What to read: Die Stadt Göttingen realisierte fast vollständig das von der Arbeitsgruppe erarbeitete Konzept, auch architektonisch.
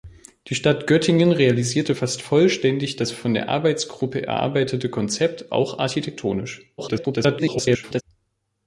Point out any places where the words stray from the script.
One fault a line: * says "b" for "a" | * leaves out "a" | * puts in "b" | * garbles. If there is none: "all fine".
* garbles